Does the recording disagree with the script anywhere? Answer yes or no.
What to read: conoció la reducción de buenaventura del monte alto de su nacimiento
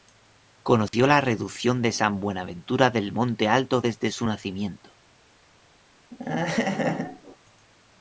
yes